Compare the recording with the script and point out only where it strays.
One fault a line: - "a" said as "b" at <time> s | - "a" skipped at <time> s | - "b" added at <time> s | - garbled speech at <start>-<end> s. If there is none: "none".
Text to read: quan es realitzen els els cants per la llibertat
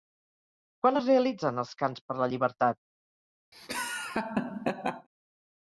- "els" skipped at 1.7 s